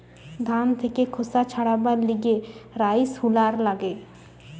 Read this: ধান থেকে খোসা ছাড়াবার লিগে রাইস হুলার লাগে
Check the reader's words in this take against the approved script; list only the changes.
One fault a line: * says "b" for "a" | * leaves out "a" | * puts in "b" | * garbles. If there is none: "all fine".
all fine